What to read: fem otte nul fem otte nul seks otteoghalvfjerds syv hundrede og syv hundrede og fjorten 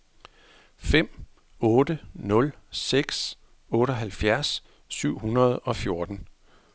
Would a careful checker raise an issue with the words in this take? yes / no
yes